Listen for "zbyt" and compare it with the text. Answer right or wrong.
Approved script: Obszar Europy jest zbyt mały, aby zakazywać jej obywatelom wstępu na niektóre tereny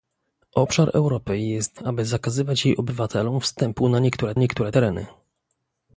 wrong